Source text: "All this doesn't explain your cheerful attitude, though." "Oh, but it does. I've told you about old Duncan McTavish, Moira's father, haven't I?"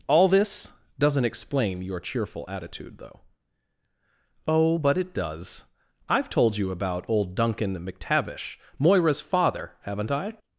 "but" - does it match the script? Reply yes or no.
yes